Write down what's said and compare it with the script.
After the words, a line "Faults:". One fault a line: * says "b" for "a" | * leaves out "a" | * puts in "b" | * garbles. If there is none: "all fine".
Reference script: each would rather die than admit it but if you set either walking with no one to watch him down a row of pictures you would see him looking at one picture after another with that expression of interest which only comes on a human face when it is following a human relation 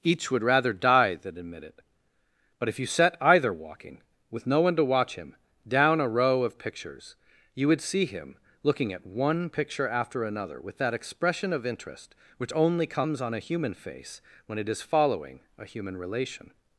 each would rather die than admit it but if you set either walking with no one to watch him down a row of pictures you would see him looking at one picture after another with that expression of interest which only comes on a human face when it is following a human relation
Faults:
all fine